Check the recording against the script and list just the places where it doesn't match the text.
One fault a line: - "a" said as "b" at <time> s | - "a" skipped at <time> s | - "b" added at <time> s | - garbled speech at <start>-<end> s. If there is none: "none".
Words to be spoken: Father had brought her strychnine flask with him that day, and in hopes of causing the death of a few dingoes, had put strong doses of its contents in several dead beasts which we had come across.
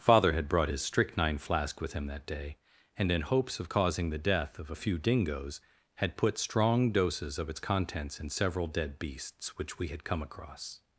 - "her" said as "his" at 0.7 s